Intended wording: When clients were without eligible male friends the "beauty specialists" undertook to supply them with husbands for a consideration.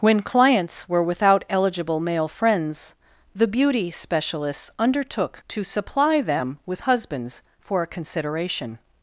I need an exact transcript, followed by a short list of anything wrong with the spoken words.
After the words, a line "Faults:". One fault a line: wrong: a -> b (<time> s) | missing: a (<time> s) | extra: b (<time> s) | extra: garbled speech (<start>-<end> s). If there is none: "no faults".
When clients were without eligible male friends the "beauty specialists" undertook to supply them with husbands for a consideration.
Faults:
no faults